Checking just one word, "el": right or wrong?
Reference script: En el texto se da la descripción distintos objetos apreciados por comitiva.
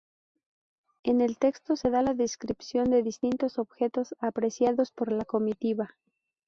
right